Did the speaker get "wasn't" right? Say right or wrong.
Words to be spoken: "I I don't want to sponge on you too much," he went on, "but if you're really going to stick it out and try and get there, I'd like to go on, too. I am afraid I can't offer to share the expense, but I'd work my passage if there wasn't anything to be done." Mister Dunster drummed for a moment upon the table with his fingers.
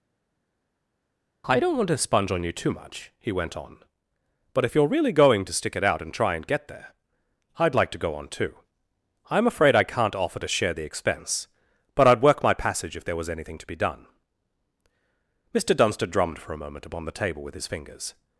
wrong